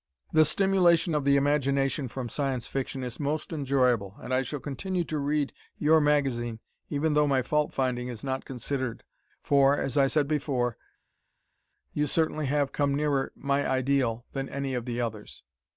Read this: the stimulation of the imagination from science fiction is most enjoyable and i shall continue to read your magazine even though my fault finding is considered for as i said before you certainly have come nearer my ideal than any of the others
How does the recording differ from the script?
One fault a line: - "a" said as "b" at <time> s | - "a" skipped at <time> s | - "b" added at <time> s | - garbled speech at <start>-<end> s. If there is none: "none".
- "not" added at 8.2 s